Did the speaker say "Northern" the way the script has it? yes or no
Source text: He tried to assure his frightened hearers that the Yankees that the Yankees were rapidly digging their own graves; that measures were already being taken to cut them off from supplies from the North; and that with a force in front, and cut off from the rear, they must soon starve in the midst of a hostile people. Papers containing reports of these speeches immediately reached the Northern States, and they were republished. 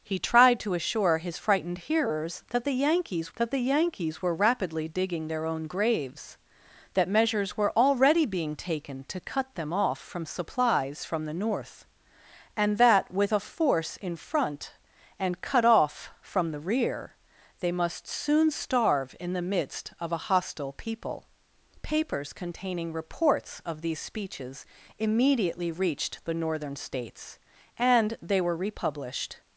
yes